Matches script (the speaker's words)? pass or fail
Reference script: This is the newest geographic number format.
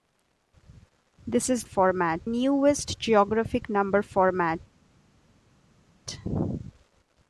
fail